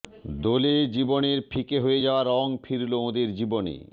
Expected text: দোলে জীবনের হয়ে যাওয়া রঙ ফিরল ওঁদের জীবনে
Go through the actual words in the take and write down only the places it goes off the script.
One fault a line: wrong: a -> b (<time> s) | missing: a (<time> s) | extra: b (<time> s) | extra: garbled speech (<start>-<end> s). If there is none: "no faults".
extra: ফিকে (1.5 s)